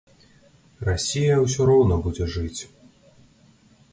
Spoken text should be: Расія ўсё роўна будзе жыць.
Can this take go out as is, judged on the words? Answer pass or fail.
pass